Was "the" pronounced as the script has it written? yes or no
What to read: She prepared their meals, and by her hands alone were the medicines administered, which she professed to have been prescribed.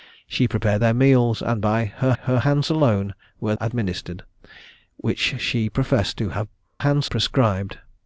no